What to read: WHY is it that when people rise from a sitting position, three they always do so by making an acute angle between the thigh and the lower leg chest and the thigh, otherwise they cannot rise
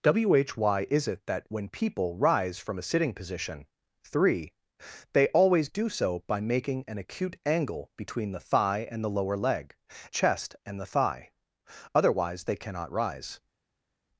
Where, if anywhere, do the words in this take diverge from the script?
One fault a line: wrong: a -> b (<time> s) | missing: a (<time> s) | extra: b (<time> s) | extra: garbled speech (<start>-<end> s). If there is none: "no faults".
no faults